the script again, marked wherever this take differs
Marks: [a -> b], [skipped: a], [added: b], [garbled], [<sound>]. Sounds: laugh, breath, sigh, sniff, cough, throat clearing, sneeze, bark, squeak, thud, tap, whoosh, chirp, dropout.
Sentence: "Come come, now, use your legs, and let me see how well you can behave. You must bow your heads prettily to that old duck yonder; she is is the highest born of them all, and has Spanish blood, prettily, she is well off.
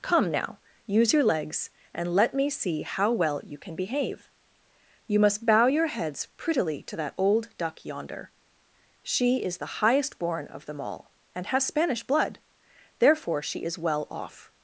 "Come [skipped: come,] now, use your legs, and let me see how well you can behave. You must bow your heads prettily to that old duck yonder; she is [skipped: is] the highest born of them all, and has Spanish blood, [prettily, -> therefore] she is well off.